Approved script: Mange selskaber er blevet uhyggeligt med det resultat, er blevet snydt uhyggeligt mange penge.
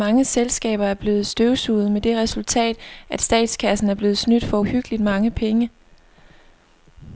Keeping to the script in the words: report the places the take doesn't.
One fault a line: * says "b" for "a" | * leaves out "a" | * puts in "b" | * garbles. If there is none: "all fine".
* says "støvsuget" for "uhyggeligt"
* puts in "at statskassen"
* puts in "for"